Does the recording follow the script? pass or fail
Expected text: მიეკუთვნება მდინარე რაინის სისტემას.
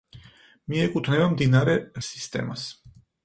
fail